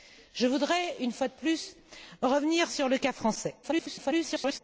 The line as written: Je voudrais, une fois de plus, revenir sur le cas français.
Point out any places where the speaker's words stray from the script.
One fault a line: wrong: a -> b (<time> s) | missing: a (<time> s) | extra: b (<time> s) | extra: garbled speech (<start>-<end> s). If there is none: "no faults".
extra: garbled speech (3.6-4.6 s)